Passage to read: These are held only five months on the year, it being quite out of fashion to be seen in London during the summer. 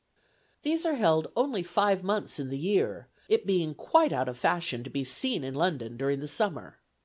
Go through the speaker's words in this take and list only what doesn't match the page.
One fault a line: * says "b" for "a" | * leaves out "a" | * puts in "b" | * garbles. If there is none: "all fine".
* says "in" for "on"